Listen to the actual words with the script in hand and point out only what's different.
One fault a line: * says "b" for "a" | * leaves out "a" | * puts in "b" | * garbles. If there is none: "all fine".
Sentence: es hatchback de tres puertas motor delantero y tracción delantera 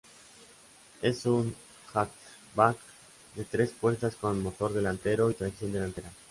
* puts in "un"
* puts in "con"